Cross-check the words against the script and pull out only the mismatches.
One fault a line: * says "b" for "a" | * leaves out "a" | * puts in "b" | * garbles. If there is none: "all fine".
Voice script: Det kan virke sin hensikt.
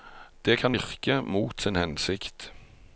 * puts in "mot"